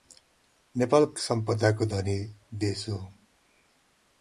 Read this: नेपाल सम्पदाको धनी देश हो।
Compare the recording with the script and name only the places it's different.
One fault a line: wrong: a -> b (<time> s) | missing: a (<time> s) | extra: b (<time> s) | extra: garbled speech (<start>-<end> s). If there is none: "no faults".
no faults